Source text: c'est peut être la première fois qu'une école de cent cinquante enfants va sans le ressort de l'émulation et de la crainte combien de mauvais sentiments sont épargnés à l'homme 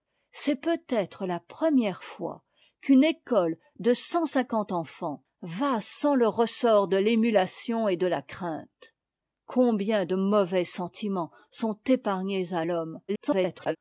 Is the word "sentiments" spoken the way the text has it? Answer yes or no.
yes